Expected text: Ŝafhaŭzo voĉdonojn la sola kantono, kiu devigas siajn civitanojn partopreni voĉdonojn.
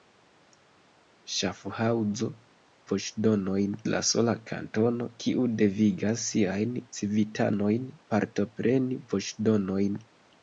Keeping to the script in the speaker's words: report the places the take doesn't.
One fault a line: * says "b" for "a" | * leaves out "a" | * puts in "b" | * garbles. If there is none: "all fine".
all fine